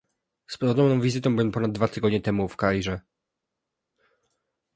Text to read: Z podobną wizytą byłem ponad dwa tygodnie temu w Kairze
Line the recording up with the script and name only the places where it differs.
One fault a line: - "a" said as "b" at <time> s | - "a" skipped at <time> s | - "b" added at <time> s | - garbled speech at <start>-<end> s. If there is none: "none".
none